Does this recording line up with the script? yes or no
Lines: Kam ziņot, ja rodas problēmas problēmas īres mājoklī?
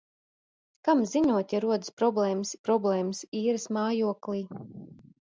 yes